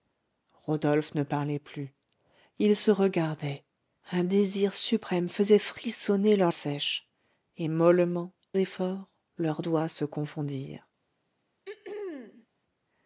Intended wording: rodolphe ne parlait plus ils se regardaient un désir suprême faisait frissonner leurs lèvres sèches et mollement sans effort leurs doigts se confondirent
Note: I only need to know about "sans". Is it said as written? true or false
false